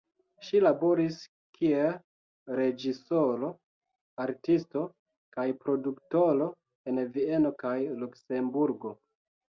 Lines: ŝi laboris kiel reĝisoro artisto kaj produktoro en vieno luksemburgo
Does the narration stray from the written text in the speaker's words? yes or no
yes